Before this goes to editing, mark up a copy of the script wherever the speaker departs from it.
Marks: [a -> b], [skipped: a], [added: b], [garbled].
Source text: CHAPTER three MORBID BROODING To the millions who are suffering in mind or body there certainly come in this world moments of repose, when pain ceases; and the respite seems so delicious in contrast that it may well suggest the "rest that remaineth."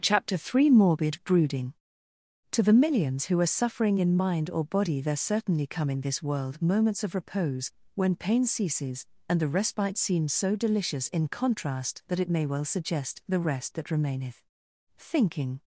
CHAPTER three MORBID BROODING To the millions who are suffering in mind or body there certainly come in this world moments of repose, when pain ceases; and the respite seems so delicious in contrast that it may well suggest the "rest that remaineth." [added: Thinking]